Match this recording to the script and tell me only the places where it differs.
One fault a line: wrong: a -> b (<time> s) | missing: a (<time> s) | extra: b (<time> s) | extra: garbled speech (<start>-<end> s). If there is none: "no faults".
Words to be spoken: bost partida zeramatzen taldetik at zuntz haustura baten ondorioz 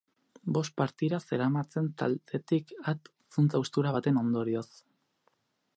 no faults